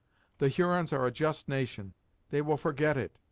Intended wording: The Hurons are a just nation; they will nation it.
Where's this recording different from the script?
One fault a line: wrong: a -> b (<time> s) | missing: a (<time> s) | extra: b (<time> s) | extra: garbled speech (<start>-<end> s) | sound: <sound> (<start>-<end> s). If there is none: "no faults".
wrong: nation -> forget (2.6 s)